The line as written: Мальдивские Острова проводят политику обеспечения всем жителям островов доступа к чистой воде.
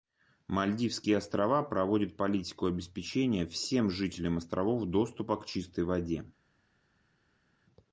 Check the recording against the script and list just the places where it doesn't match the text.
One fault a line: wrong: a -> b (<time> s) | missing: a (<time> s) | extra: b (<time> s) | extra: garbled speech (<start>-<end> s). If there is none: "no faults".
no faults